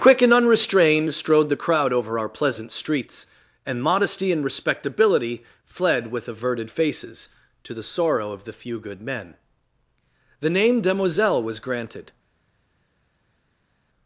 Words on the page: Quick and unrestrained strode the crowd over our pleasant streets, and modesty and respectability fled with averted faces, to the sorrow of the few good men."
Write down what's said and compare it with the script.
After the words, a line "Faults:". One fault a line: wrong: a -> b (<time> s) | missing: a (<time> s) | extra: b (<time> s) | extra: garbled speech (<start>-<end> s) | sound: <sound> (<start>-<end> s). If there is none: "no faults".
Quick and unrestrained strode the crowd over our pleasant streets, and modesty and respectability fled with averted faces, to the sorrow of the few good men." The name demoiselle was granted
Faults:
extra: The name demoiselle was granted (10.4 s)